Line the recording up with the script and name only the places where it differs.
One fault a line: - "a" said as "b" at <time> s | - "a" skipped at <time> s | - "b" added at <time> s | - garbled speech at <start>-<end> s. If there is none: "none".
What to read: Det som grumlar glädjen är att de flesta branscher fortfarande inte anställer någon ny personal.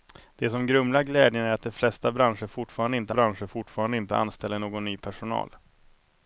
- "branscher fortfarande inte" added at 3.1 s